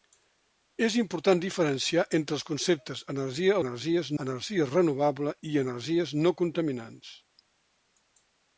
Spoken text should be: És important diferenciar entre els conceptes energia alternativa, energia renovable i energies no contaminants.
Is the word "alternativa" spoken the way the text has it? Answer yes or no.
no